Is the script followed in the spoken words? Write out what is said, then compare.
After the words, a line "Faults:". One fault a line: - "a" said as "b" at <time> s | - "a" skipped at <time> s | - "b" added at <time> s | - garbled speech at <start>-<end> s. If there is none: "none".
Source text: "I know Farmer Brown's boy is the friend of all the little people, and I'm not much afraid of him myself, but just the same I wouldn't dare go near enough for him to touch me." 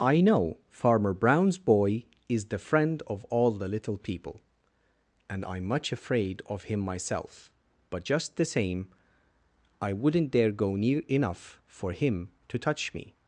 "I know Farmer Brown's boy is the friend of all the little people, and I'm much afraid of him myself, but just the same I wouldn't dare go near enough for him to touch me."
Faults:
- "not" skipped at 5.7 s